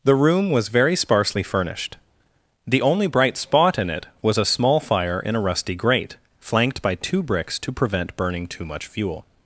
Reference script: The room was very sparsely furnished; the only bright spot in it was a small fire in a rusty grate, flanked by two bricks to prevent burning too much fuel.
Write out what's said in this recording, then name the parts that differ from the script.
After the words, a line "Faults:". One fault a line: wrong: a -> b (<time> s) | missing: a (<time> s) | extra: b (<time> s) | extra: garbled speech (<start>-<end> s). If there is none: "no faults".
The room was very sparsely furnished; the only bright spot in it was a small fire in a rusty grate, flanked by two bricks to prevent burning too much fuel.
Faults:
no faults